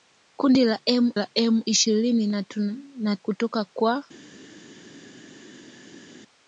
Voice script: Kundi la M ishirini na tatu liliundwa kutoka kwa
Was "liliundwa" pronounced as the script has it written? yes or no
no